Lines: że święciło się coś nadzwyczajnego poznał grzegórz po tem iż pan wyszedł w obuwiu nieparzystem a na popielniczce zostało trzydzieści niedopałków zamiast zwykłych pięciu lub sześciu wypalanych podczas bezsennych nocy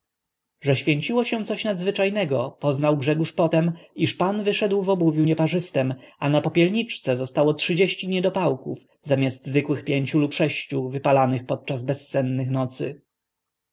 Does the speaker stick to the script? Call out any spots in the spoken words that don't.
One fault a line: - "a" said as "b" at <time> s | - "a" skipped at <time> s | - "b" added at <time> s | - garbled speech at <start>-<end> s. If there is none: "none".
none